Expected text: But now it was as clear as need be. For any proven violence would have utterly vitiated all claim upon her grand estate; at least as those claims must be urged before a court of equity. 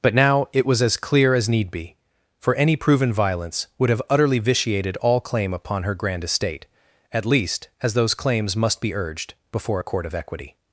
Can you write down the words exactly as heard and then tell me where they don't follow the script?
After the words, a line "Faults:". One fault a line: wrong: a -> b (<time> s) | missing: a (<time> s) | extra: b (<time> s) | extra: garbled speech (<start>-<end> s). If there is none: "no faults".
But now it was as clear as need be. For any proven violence would have utterly vitiated all claim upon her grand estate; at least as those claims must be urged before a court of equity.
Faults:
no faults